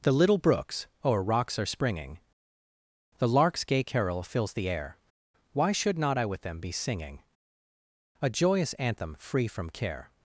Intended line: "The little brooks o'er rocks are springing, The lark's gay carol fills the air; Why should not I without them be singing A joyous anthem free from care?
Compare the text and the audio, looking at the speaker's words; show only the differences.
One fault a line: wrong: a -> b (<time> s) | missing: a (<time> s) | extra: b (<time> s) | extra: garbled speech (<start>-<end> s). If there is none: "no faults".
wrong: without -> with (6.2 s)